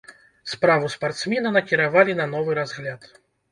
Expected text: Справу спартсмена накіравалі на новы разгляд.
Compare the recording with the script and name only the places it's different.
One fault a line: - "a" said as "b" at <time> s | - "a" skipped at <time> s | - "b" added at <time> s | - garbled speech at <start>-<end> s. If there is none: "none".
none